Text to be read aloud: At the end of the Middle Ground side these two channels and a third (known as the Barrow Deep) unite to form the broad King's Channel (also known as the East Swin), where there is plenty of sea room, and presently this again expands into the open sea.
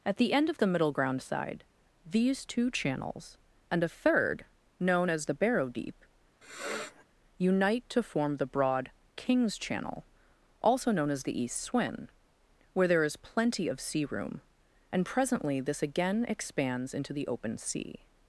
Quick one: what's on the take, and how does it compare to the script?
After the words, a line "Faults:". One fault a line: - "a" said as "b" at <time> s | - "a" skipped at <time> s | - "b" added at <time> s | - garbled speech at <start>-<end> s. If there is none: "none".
At the end of the Middle Ground side these two channels and a third (known as the Barrow Deep) unite to form the broad King's Channel (also known as the East Swin), where there is plenty of sea room, and presently this again expands into the open sea.
Faults:
none